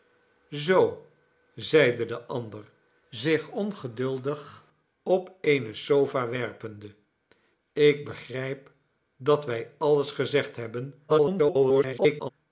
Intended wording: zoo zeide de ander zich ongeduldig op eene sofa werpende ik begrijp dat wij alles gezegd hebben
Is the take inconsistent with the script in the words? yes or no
yes